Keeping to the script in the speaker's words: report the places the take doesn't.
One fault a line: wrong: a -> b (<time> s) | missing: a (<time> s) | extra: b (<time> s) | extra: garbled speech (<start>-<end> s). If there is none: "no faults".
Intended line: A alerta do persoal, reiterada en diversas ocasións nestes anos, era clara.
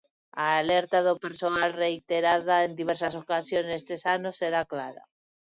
no faults